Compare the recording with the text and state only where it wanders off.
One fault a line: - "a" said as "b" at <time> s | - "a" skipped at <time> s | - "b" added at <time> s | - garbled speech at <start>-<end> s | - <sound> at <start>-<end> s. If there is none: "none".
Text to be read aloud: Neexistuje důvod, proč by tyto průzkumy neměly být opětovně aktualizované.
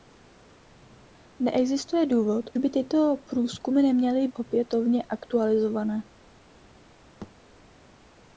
- "proč" skipped at 2.5 s
- "být" skipped at 4.3 s
- thud at 7.2-7.3 s